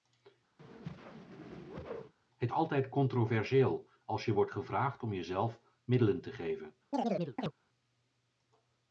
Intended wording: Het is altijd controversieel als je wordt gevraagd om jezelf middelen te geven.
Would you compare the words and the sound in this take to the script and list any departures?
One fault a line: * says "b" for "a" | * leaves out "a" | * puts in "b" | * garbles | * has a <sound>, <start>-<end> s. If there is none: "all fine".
* has a whoosh, 0.6-2.1 s
* leaves out "is"
* has a chirp, 6.9-7.5 s